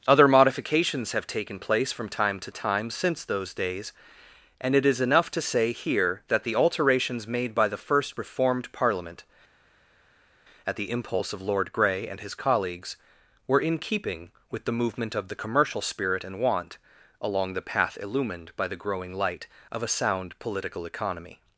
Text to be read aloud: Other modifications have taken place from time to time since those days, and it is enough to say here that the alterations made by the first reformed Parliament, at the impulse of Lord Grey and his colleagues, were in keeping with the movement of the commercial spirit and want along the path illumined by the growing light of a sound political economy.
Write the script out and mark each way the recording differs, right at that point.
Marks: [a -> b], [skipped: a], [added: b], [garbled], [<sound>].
Other modifications have taken place from time to time since those days, and it is enough to say here that the alterations made by the first reformed Parliament, at the impulse of Lord Grey and his colleagues, were in keeping with the movement of the commercial spirit and want along the path illumined by the growing light of a sound political economy.